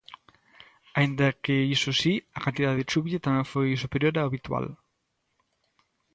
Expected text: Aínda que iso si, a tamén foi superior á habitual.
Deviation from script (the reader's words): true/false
true